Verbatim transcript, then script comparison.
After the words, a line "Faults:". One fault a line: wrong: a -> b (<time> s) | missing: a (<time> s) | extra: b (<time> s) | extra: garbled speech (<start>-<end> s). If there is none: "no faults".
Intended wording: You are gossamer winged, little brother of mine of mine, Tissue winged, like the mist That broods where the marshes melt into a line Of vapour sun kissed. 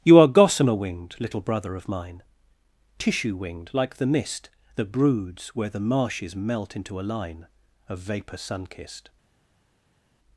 You are gossamer winged, little brother of mine, Tissue winged, like the mist That broods where the marshes melt into a line Of vapour sun kissed.
Faults:
missing: of mine (2.2 s)